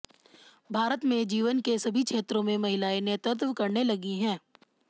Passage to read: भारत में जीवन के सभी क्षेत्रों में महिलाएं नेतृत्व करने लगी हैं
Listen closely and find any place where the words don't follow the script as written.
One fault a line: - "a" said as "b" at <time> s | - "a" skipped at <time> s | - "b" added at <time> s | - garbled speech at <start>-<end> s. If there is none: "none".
none